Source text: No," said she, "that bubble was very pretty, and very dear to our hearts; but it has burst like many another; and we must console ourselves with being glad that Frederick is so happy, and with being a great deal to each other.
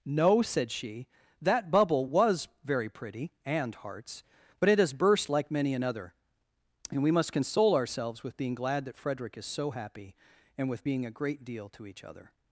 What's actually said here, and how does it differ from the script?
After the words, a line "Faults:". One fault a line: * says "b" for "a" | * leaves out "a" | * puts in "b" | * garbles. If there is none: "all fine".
No," said she, "that bubble was very pretty, and hearts; but it has burst like many another; and we must console ourselves with being glad that Frederick is so happy, and with being a great deal to each other.
Faults:
* leaves out "very dear to our"